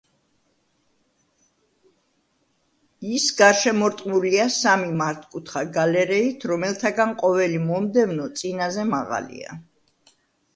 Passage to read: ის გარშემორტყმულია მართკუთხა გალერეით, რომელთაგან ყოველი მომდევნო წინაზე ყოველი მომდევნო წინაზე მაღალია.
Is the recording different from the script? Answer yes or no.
yes